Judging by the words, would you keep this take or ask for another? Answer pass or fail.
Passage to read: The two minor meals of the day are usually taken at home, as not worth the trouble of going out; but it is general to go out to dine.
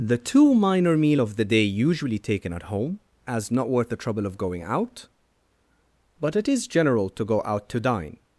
fail